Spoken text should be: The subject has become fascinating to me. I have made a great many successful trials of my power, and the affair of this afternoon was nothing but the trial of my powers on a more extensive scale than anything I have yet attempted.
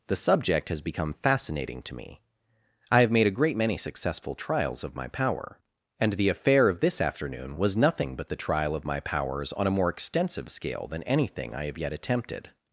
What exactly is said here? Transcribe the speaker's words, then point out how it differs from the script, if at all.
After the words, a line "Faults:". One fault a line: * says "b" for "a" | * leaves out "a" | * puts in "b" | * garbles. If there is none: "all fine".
The subject has become fascinating to me. I have made a great many successful trials of my power, and the affair of this afternoon was nothing but the trial of my powers on a more extensive scale than anything I have yet attempted.
Faults:
all fine